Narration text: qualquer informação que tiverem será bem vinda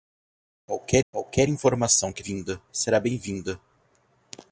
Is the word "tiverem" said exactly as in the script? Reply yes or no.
no